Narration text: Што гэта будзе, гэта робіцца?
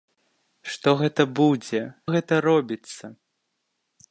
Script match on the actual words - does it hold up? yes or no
yes